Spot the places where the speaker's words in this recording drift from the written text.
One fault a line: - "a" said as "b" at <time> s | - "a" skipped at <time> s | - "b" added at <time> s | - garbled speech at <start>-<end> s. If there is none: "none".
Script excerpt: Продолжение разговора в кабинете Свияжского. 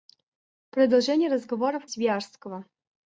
- "кабинете" skipped at 1.9 s